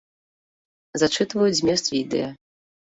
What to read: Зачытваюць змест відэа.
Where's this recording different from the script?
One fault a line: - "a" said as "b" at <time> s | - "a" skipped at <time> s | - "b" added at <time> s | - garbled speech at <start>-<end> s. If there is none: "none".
none